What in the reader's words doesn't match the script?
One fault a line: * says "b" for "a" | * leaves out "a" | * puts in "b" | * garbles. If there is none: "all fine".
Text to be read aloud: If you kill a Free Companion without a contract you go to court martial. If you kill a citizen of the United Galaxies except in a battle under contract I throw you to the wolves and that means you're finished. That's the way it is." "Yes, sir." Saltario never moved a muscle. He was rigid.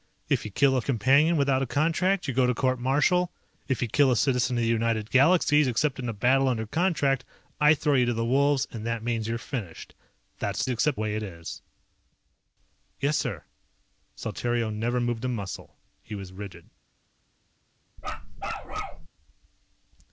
* leaves out "Free"
* says "except" for "the"